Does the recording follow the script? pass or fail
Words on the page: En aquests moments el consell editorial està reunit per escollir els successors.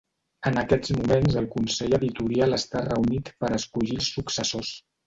pass